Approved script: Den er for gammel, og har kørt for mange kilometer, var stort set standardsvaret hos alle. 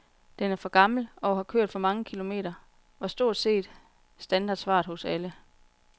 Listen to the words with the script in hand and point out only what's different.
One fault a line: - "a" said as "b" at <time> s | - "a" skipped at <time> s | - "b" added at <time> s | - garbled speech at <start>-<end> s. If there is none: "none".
none